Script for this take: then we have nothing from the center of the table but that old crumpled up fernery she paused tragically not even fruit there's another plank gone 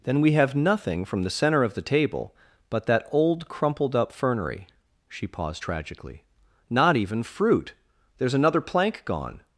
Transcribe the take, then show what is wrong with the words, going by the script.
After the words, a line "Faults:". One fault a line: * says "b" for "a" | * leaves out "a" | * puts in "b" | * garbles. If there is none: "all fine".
then we have nothing from the center of the table but that old crumpled up fernery she paused tragically not even fruit there's another plank gone
Faults:
all fine